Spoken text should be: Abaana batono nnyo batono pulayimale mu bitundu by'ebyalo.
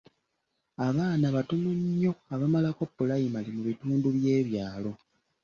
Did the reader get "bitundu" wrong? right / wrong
right